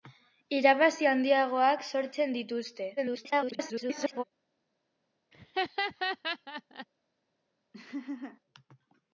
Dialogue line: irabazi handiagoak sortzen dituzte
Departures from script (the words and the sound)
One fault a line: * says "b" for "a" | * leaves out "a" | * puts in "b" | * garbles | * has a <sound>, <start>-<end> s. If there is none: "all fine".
* garbles
* has a laugh, 5.3-6.9 s
* has a laugh, 7.7-8.4 s